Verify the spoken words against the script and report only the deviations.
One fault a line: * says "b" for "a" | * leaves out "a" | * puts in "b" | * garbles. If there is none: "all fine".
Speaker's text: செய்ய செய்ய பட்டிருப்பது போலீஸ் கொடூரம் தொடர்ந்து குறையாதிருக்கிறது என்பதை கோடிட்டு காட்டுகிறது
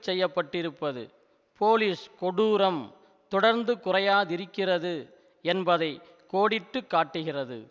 * leaves out "செய்ய"